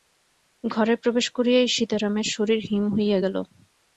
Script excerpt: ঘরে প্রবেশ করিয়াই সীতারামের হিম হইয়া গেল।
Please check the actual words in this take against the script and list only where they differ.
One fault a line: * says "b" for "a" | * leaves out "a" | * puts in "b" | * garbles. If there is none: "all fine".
* puts in "শরীর"